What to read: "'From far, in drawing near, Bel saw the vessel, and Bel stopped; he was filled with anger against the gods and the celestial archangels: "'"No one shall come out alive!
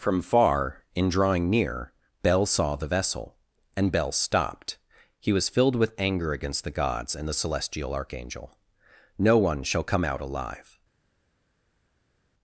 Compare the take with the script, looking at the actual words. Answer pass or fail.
fail